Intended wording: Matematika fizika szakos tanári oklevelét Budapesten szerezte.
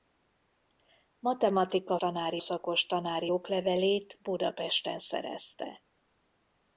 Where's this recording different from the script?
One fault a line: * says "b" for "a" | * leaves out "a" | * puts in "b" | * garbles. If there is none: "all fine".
* says "tanári" for "fizika"